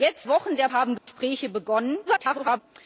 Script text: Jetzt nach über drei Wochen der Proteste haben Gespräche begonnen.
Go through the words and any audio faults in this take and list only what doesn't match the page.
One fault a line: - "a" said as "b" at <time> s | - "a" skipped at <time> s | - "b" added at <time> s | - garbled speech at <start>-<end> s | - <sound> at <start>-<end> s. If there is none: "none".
- "nach über drei" skipped at 0.3 s
- "Proteste" skipped at 0.7 s
- dropout at 1.0-1.1 s
- garbled speech at 2.1-2.6 s